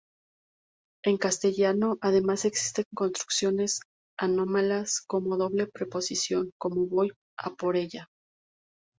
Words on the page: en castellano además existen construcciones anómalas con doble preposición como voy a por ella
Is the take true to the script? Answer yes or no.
yes